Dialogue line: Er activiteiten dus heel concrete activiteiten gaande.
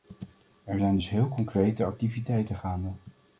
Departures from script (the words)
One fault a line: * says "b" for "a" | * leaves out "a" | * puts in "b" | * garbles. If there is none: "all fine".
* says "zijn" for "activiteiten"